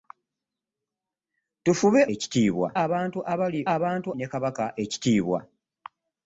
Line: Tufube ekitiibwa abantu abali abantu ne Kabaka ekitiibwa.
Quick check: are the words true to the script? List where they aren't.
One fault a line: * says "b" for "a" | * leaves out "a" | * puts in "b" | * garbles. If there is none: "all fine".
all fine